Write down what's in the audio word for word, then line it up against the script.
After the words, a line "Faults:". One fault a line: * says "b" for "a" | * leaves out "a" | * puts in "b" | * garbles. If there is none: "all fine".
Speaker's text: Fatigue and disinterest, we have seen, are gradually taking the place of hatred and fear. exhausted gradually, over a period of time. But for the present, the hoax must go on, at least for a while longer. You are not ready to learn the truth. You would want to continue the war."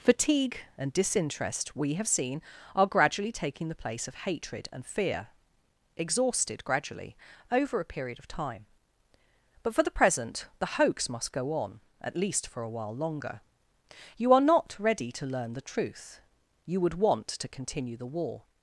Fatigue and disinterest, we have seen, are gradually taking the place of hatred and fear. exhausted gradually, over a period of time. But for the present, the hoax must go on, at least for a while longer. You are not ready to learn the truth. You would want to continue the war."
Faults:
all fine